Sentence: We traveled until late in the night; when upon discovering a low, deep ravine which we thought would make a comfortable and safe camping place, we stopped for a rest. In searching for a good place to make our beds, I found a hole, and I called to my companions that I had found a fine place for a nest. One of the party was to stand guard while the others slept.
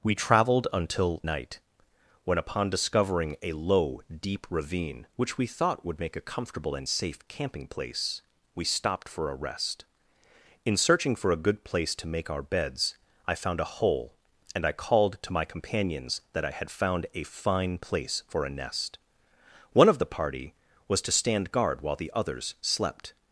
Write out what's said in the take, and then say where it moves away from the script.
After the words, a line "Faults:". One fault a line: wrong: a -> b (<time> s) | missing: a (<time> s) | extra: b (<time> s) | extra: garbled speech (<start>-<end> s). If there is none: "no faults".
We traveled until night; when upon discovering a low, deep ravine which we thought would make a comfortable and safe camping place, we stopped for a rest. In searching for a good place to make our beds, I found a hole, and I called to my companions that I had found a fine place for a nest. One of the party was to stand guard while the others slept.
Faults:
missing: late in the (1.2 s)